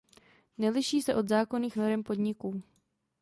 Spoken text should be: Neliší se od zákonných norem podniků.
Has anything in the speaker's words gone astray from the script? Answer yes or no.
no